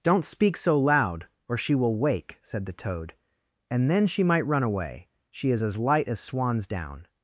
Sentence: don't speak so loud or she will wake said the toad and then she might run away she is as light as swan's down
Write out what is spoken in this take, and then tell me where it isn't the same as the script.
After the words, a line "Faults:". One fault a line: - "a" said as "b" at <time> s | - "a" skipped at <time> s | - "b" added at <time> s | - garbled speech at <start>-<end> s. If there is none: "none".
don't speak so loud or she will wake said the toad and then she might run away she is as light as swan's down
Faults:
none